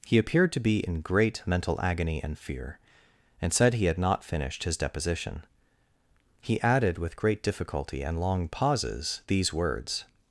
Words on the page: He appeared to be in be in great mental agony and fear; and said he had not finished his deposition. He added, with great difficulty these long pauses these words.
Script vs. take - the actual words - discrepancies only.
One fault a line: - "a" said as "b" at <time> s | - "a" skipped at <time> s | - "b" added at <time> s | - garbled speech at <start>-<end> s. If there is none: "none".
- "be in" skipped at 1.0 s
- "these" said as "and" at 8.0 s